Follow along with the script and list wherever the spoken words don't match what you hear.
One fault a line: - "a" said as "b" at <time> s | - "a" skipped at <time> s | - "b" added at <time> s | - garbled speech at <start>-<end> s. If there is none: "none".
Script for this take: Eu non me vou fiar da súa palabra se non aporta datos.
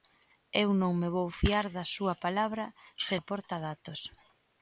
- "non" skipped at 3.1 s